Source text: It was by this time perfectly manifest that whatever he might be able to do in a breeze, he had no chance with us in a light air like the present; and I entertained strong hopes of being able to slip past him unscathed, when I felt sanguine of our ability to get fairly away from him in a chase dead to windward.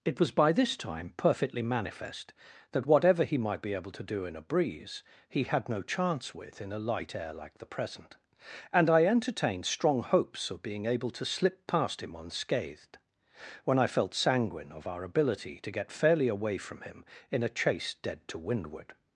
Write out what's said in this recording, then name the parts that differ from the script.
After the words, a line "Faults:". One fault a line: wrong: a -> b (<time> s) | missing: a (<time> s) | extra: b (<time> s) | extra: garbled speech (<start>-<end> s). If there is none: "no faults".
It was by this time perfectly manifest that whatever he might be able to do in a breeze, he had no chance with in a light air like the present; and I entertained strong hopes of being able to slip past him unscathed, when I felt sanguine of our ability to get fairly away from him in a chase dead to windward.
Faults:
missing: us (6.6 s)